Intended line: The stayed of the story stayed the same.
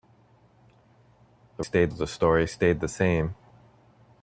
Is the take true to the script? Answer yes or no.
yes